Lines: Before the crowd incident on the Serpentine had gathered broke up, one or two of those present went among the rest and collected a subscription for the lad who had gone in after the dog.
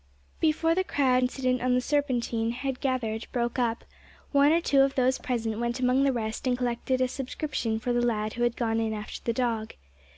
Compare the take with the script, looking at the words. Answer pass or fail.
pass